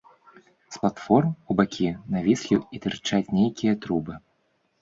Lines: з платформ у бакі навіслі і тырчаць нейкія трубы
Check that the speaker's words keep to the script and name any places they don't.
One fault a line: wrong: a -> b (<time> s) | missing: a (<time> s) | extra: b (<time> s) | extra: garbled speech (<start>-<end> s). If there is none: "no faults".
no faults